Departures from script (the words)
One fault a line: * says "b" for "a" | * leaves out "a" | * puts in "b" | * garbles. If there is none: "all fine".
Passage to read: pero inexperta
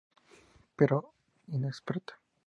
all fine